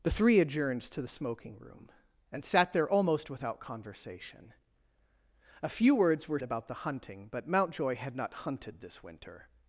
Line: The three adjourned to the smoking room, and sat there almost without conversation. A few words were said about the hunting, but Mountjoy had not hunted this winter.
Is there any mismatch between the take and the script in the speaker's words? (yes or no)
yes